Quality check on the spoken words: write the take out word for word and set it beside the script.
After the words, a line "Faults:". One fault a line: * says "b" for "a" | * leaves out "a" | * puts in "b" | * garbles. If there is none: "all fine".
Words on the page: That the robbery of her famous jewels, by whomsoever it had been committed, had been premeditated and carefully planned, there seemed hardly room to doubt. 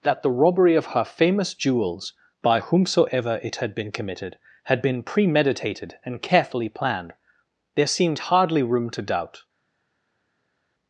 That the robbery of her famous jewels, by whomsoever it had been committed, had been premeditated and carefully planned, there seemed hardly room to doubt.
Faults:
all fine